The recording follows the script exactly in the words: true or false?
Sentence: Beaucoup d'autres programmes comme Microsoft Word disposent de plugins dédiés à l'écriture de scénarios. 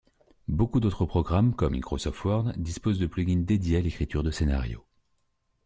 true